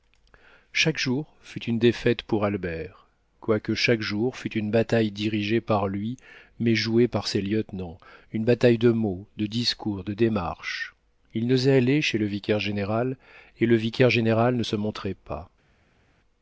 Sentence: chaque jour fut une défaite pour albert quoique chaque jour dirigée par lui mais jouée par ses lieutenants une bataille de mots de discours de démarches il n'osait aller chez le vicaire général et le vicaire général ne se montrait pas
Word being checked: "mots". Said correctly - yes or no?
yes